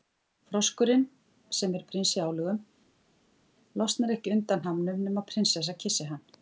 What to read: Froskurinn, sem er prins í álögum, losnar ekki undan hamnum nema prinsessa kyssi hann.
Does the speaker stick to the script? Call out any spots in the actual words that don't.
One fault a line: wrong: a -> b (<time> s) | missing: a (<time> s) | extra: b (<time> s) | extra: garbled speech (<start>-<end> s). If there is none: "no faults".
no faults